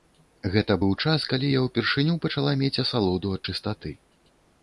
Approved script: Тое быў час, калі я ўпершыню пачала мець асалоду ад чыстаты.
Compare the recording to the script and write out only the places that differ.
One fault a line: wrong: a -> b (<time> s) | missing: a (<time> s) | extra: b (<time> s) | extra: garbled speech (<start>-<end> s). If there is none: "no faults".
wrong: Тое -> Гэта (0.5 s)